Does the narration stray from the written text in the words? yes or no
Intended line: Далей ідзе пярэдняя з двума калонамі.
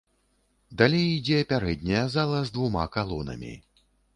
yes